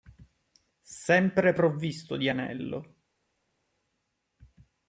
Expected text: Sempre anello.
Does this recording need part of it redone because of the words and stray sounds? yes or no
yes